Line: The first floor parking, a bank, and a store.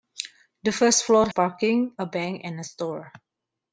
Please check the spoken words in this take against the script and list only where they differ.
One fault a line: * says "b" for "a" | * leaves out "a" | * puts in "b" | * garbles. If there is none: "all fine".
all fine